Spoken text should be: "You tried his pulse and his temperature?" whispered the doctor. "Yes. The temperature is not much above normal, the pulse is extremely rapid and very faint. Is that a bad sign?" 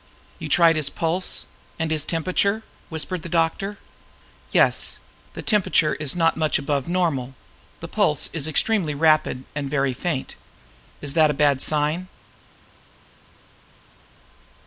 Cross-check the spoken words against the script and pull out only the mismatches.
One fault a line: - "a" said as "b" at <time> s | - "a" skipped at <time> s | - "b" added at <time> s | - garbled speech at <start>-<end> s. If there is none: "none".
none